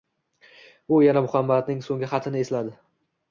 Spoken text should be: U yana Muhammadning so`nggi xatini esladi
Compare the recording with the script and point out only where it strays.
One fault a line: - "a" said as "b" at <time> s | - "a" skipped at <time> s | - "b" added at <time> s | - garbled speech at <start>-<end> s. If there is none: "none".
none